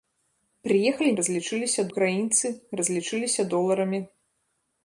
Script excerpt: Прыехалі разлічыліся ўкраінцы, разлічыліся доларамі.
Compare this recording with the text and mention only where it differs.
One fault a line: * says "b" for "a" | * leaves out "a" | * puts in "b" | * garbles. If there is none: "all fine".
all fine